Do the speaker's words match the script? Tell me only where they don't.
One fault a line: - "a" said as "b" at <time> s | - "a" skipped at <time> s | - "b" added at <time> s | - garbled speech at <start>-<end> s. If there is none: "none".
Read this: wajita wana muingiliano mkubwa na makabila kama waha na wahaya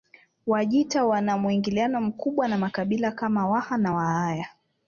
none